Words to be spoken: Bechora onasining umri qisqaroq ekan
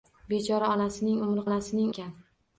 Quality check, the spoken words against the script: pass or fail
fail